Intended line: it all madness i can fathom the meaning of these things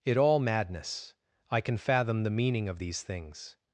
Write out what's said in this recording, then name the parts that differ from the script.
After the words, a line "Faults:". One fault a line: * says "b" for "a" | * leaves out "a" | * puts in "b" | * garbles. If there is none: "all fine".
it all madness i can fathom the meaning of these things
Faults:
all fine